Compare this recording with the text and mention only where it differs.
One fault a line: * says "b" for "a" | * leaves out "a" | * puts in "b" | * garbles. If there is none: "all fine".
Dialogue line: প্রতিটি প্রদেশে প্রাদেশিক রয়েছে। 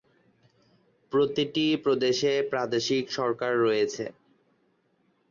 * puts in "সরকার"